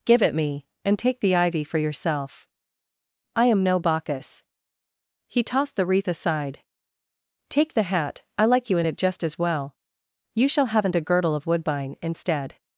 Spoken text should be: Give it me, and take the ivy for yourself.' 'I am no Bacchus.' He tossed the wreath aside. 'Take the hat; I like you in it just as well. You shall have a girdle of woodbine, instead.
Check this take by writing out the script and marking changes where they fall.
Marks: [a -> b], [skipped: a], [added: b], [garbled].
Give it me, and take the ivy for yourself.' 'I am no Bacchus.' He tossed the wreath aside. 'Take the hat; I like you in it just as well. You shall [have -> haven't] a girdle of woodbine, instead.